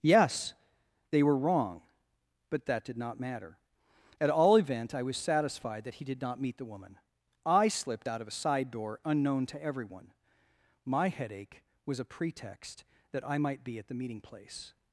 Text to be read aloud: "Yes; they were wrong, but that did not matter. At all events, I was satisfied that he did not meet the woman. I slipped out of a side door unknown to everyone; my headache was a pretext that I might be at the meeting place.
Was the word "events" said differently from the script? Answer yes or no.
yes